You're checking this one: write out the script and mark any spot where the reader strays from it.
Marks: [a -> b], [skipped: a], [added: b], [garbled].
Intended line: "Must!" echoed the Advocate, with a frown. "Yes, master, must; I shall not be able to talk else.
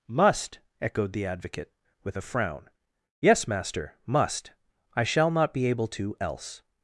"Must!" echoed the Advocate, with a frown. "Yes, master, must; I shall not be able to [skipped: talk] else.